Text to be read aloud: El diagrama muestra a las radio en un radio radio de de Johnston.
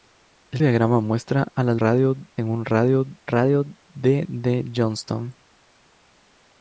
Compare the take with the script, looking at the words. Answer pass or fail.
pass